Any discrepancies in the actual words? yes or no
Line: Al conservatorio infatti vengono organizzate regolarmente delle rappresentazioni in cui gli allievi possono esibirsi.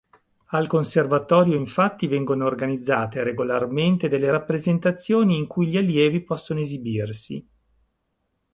no